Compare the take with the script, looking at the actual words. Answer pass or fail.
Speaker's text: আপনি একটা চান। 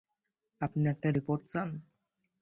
fail